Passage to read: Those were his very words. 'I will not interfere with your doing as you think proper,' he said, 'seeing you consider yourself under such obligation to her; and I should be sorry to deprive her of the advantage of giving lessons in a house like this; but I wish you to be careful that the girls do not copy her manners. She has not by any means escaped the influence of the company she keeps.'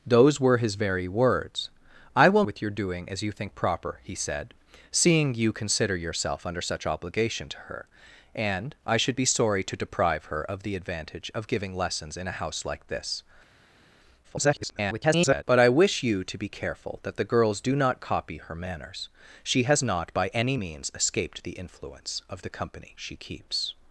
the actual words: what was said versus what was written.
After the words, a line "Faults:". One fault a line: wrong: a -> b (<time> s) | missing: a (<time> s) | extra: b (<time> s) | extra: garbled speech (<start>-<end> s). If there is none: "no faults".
Those were his very words. 'I will with your doing as you think proper,' he said, 'seeing you consider yourself under such obligation to her; and I should be sorry to deprive her of the advantage of giving lessons in a house like this; [garbled] but I wish you to be careful that the girls do not copy her manners. She has not by any means escaped the influence of the company she keeps.'
Faults:
missing: not interfere (2.4 s)
extra: garbled speech (14.2-15.4 s)